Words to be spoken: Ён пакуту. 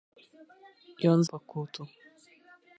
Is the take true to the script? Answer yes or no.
yes